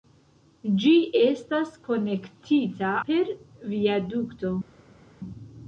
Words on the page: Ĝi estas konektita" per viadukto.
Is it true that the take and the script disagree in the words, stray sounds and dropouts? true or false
false